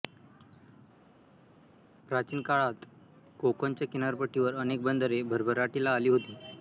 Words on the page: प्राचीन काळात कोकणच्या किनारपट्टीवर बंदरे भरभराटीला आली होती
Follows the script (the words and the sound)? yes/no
no